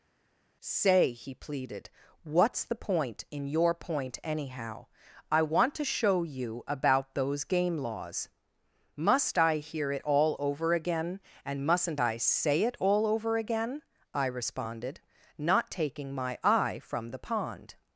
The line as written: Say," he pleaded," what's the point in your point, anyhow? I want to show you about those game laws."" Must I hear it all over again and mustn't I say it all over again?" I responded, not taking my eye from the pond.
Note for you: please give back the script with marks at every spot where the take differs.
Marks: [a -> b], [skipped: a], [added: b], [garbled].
Say," he pleaded," what's the point in your point, anyhow? I want to show you about those game laws."" Must I hear it all over again and mustn't I say it all over again?" I responded, not taking my eye from the pond.